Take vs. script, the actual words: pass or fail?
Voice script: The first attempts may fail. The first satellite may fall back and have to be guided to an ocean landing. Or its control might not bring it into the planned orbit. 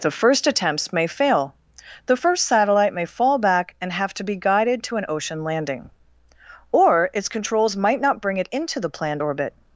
fail